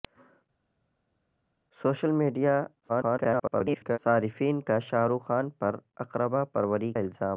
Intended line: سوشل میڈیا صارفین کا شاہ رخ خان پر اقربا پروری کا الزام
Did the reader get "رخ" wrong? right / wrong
right